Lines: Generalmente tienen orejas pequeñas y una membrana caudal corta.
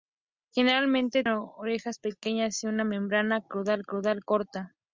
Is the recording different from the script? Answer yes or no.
yes